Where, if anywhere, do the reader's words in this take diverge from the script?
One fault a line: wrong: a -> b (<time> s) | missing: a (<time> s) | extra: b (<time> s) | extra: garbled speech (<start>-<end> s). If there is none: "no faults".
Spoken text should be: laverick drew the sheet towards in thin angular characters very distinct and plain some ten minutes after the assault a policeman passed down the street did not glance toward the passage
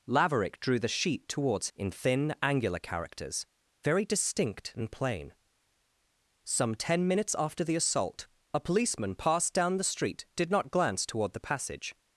no faults